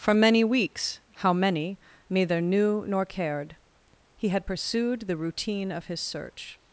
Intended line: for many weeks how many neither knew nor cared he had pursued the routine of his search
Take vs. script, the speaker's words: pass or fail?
pass